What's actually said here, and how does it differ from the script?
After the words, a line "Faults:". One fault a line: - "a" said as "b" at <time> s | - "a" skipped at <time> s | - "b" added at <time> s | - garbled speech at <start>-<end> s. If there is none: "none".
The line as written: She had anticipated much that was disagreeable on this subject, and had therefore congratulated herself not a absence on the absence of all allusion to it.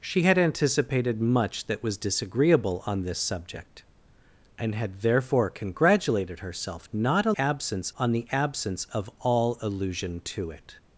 She had anticipated much that was disagreeable on this subject, and had therefore congratulated herself not a absence on the absence of all allusion to it.
Faults:
none